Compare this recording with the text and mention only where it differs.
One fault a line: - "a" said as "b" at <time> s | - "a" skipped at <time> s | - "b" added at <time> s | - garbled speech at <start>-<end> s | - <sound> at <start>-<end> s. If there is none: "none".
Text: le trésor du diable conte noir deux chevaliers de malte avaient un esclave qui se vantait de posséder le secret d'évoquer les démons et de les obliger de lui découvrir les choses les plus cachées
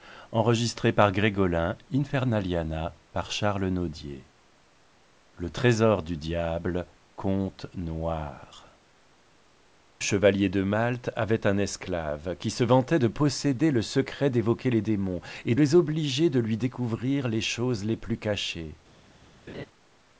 - "deux" skipped at 8.8 s
- "de" skipped at 15.5 s
- laugh at 19.5-19.7 s